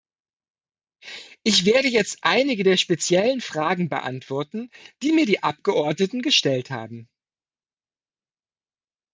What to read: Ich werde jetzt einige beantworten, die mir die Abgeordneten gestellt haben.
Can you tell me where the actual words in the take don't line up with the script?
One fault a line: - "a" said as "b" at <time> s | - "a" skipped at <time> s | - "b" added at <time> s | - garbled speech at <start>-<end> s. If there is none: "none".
- "der speziellen Fragen" added at 2.6 s